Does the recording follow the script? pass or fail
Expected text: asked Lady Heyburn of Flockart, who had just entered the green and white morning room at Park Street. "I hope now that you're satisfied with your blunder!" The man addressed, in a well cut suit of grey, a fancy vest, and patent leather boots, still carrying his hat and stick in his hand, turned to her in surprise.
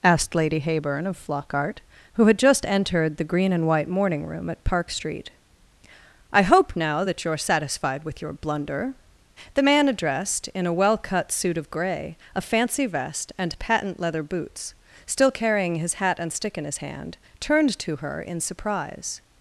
pass